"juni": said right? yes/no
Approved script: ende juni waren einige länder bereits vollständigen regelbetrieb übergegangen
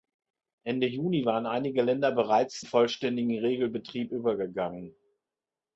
yes